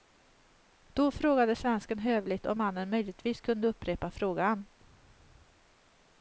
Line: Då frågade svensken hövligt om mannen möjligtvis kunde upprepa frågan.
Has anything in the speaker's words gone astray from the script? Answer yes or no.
no